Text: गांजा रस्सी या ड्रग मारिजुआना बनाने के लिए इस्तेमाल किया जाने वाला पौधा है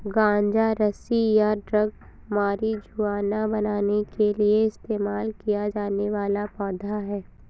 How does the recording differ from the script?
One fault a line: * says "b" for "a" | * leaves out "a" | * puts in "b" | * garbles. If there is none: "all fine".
all fine